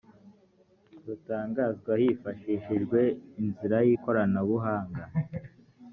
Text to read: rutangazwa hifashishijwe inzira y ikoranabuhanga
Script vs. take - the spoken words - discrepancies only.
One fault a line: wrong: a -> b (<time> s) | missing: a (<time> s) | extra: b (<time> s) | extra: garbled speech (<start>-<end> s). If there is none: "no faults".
no faults